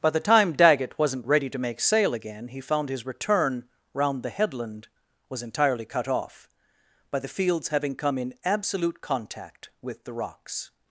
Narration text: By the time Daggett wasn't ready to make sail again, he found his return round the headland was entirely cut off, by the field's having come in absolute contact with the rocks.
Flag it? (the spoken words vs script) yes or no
no